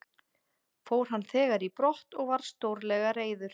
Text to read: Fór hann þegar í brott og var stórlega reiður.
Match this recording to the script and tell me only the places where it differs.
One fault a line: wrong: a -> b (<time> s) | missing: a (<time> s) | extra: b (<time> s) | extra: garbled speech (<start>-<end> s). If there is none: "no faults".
no faults